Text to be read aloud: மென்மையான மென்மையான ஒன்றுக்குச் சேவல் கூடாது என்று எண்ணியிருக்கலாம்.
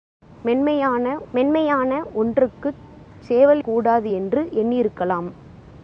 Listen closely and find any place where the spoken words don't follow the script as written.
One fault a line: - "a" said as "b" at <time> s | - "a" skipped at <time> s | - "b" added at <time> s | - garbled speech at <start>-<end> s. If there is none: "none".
none